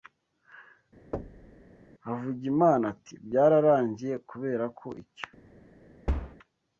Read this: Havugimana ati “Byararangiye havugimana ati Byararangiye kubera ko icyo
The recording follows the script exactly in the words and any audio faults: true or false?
false